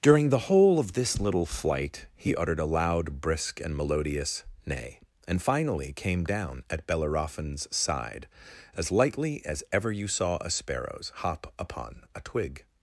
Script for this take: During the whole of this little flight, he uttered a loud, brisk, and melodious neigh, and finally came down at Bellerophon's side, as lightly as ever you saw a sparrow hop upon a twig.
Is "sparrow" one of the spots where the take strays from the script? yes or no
yes